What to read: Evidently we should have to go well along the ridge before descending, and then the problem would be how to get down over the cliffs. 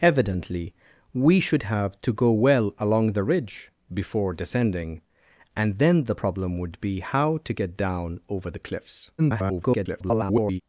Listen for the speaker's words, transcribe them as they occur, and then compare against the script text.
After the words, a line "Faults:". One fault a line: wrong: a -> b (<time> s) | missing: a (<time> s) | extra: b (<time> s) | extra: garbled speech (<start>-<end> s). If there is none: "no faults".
Evidently we should have to go well along the ridge before descending, and then the problem would be how to get down over the cliffs. [garbled]
Faults:
extra: garbled speech (9.2-10.6 s)